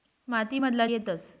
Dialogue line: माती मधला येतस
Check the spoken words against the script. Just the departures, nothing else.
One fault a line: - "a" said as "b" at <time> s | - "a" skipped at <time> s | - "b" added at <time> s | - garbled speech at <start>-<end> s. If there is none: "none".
none